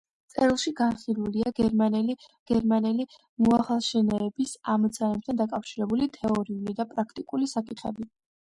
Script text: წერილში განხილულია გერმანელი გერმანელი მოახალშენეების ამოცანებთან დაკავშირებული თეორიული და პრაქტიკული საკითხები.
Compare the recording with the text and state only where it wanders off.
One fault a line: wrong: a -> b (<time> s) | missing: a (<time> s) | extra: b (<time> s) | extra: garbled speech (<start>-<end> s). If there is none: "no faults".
no faults